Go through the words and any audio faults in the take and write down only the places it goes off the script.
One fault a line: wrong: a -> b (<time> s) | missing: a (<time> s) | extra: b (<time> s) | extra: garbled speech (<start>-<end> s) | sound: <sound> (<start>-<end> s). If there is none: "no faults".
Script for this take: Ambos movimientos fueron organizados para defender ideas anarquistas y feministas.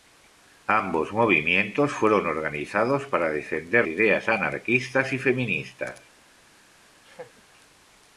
sound: laugh (7.0-7.4 s)